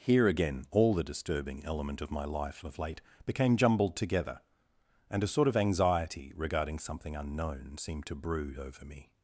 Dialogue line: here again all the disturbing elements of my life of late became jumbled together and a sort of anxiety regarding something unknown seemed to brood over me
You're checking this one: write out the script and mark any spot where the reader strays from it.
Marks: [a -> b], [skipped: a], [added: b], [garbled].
here again all the disturbing [elements -> element] of my life of late became jumbled together and a sort of anxiety regarding something unknown seemed to brood over me